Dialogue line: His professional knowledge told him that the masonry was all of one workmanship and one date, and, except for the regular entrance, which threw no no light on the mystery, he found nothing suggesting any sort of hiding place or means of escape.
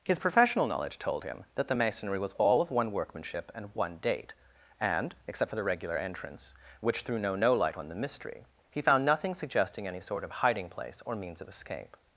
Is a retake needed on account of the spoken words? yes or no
no